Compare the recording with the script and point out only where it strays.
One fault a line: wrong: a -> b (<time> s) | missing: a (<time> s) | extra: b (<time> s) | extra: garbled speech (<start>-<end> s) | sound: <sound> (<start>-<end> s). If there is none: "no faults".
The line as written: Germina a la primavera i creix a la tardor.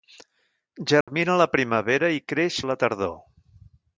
sound: dropout (1.0-1.1 s)